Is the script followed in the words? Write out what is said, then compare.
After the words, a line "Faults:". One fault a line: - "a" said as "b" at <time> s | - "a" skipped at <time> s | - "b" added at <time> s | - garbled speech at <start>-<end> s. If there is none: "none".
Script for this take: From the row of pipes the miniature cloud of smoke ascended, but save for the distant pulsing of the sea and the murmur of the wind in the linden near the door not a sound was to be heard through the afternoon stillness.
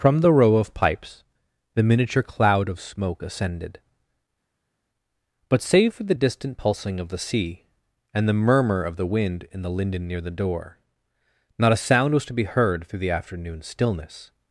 From the row of pipes the miniature cloud of smoke ascended, but save for the distant pulsing of the sea and the murmur of the wind in the linden near the door not a sound was to be heard through the afternoon stillness.
Faults:
none